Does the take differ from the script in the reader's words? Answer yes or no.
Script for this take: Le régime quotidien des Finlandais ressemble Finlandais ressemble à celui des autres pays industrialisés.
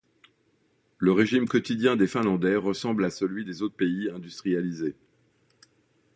yes